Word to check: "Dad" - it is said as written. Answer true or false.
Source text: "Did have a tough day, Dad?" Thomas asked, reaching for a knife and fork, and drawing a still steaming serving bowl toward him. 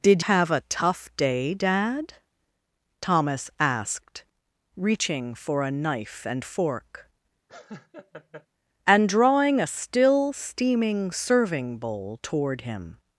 true